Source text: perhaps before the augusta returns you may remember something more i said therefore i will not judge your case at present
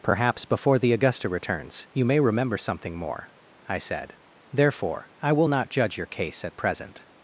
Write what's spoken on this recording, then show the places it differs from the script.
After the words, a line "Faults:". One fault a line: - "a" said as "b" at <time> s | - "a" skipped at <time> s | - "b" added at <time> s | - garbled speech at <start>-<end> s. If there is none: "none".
perhaps before the augusta returns you may remember something more i said therefore i will not judge your case at present
Faults:
none